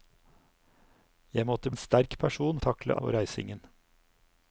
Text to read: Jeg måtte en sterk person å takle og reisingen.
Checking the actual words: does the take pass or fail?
pass